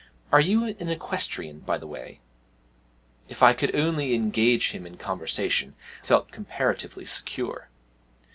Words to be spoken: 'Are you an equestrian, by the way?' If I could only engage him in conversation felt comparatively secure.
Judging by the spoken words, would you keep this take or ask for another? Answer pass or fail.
pass